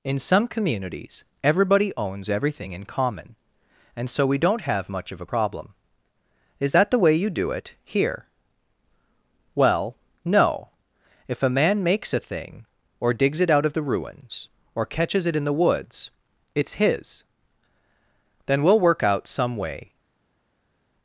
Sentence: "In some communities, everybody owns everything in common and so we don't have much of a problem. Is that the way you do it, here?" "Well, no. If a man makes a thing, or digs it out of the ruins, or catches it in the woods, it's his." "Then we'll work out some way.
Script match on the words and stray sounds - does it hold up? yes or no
yes